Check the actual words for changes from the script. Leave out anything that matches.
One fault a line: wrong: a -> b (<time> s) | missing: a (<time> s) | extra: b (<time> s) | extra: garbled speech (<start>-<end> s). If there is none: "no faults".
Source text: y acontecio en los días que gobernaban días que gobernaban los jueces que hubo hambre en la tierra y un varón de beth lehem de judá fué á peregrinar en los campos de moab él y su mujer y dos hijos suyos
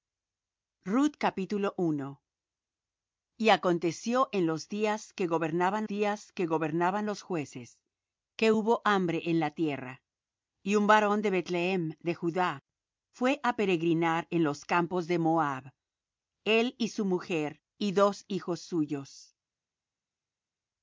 no faults